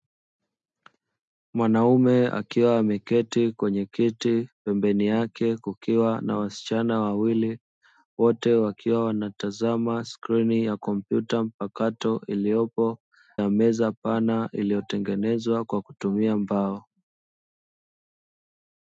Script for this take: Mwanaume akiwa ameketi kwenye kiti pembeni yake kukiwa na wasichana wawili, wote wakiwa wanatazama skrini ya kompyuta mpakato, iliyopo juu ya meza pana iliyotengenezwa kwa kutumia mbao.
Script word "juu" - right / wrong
wrong